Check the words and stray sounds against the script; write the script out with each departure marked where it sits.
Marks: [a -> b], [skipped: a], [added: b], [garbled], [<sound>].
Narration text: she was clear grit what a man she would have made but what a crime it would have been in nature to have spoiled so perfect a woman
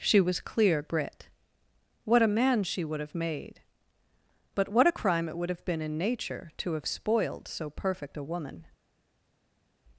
she was clear grit what a man she would have made but what a crime it would have been in nature to have spoiled so perfect a woman